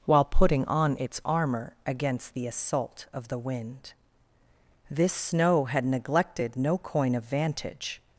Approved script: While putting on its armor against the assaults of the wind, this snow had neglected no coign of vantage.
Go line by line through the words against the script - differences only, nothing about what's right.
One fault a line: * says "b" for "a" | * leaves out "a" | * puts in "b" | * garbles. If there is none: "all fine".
* says "assault" for "assaults"